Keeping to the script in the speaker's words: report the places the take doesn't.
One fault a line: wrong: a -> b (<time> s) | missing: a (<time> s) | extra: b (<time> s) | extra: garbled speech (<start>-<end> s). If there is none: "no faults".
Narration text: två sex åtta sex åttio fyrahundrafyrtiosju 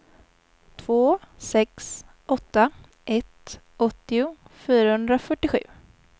wrong: sex -> ett (3.1 s)